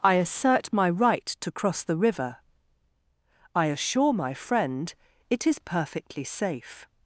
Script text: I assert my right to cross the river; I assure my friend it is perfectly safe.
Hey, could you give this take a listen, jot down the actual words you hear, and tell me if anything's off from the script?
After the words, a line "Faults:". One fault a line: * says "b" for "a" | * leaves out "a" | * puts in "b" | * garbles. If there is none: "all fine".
I assert my right to cross the river; I assure my friend it is perfectly safe.
Faults:
all fine